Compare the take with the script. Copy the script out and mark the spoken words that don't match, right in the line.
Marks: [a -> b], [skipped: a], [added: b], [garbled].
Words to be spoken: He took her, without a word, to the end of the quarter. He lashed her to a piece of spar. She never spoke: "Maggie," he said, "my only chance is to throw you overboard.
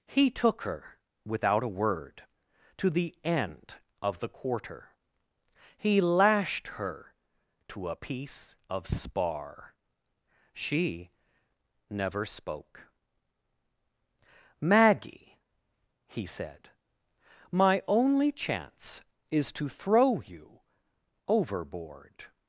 He took her, without a word, to the end of the quarter. He lashed her to a piece of spar. She never spoke: "Maggie," he said, "my only chance is to throw you overboard.